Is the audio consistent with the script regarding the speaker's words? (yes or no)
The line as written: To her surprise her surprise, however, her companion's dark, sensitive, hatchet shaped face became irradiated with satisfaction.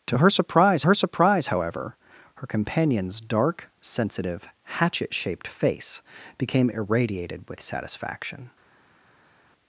yes